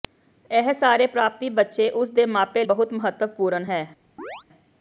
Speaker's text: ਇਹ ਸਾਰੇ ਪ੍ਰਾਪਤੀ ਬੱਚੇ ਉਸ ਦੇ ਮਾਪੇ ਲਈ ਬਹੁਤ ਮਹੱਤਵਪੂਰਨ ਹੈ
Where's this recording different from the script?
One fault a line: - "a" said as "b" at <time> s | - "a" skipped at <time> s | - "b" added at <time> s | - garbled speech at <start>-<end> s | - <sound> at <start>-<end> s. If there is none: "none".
- "ਲਈ" skipped at 2.6 s
- chirp at 4.2-4.4 s